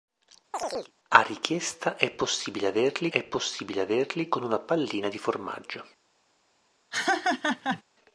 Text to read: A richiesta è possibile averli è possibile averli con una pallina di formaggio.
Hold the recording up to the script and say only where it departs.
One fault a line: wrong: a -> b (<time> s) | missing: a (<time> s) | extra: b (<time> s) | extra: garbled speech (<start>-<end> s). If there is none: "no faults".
no faults